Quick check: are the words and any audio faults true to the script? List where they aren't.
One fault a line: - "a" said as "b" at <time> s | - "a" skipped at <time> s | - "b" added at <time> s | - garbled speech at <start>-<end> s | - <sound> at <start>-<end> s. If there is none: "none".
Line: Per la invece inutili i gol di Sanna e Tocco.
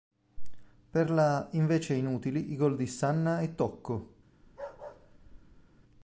- bark at 4.4-5.8 s